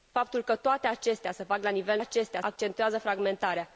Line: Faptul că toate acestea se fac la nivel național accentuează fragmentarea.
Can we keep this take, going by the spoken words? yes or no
no